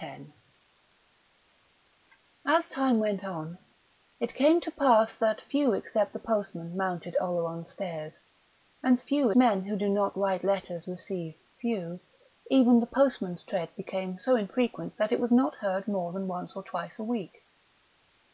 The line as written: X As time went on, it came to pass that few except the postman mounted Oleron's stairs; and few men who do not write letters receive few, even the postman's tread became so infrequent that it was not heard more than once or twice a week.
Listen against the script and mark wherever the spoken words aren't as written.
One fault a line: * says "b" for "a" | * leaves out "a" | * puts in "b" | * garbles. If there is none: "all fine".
all fine